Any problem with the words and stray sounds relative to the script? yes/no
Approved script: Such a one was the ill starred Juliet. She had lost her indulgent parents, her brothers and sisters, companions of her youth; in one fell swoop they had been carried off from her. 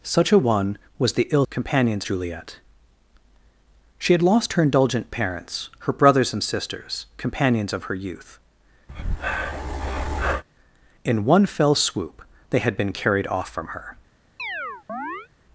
yes